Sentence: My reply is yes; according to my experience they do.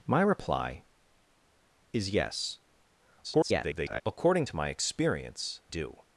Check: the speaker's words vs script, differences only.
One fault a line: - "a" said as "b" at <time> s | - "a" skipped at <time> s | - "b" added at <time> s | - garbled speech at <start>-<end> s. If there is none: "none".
- garbled speech at 3.2-4.0 s
- "they" skipped at 5.6 s